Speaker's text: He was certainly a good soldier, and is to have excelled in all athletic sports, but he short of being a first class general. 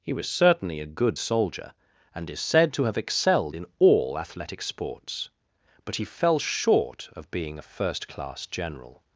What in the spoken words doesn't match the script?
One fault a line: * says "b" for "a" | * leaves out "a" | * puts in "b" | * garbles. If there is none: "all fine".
* puts in "said"
* puts in "fell"